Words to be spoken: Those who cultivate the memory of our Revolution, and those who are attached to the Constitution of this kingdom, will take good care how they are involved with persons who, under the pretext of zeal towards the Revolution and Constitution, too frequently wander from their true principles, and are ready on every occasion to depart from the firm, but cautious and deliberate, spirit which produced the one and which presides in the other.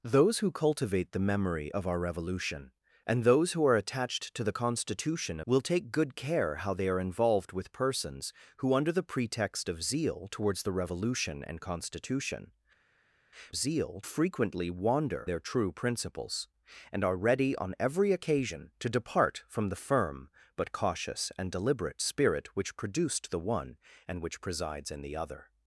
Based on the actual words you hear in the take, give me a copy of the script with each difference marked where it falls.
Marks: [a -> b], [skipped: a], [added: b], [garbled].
Those who cultivate the memory of our Revolution, and those who are attached to the Constitution [skipped: of this kingdom,] will take good care how they are involved with persons who, under the pretext of zeal towards the Revolution and Constitution, [too -> zeal] frequently wander [skipped: from] their true principles, and are ready on every occasion to depart from the firm, but cautious and deliberate, spirit which produced the one and which presides in the other.